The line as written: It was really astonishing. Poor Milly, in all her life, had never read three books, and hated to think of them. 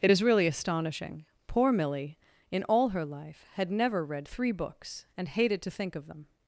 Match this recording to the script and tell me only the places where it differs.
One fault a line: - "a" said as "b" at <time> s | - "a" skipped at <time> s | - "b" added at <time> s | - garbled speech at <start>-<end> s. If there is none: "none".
- "was" said as "is" at 0.1 s